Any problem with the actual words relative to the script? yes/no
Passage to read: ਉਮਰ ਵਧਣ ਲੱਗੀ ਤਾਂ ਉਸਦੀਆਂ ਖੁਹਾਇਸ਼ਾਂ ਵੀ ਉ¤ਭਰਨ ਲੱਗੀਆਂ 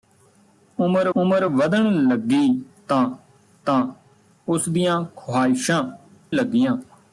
yes